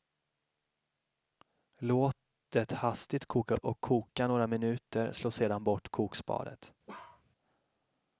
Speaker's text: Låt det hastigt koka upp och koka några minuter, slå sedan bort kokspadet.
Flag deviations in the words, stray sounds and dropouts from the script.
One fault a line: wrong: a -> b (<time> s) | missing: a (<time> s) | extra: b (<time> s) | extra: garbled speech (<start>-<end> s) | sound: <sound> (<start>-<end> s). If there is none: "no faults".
missing: upp (3.5 s)
sound: bark (6.9-7.2 s)